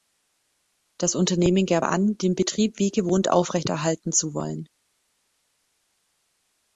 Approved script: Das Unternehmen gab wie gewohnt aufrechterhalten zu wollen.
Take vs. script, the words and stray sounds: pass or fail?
fail